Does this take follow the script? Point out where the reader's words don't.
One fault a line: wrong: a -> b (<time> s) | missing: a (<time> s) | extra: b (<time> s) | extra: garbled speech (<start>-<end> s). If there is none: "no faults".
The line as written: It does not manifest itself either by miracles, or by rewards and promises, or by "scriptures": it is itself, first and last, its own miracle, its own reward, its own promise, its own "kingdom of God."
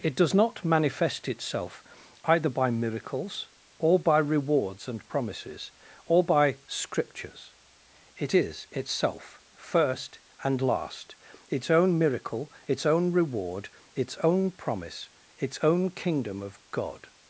no faults